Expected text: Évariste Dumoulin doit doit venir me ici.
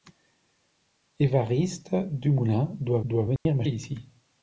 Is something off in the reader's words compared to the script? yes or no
no